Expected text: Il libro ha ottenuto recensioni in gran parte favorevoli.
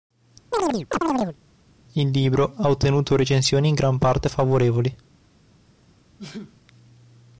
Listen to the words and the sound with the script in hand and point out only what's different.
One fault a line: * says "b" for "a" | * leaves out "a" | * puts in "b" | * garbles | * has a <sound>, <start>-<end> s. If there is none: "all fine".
* has a chirp, 0.5-1.4 s
* has a sneeze, 6.2-6.6 s